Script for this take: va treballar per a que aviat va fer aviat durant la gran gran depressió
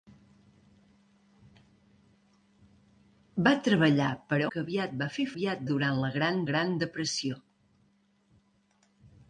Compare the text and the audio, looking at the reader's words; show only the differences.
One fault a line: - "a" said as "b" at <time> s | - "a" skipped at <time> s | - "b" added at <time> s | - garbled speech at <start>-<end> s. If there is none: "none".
none